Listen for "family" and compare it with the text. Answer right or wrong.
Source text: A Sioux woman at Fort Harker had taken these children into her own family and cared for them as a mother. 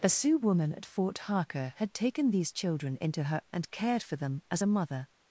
wrong